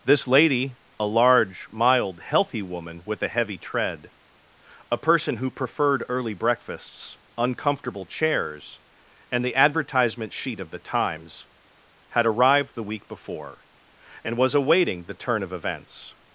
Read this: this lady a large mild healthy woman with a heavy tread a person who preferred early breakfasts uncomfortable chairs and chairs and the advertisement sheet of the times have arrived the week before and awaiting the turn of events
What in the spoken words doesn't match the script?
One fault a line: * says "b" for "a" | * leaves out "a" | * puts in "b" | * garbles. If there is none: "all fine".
* leaves out "chairs and"
* says "had" for "have"
* puts in "was"